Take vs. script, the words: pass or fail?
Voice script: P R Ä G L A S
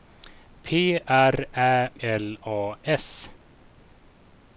fail